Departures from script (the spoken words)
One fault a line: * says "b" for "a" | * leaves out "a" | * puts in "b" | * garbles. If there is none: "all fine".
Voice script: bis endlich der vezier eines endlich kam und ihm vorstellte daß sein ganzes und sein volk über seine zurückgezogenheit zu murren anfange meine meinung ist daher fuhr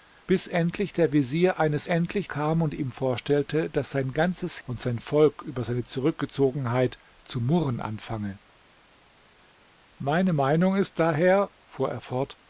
all fine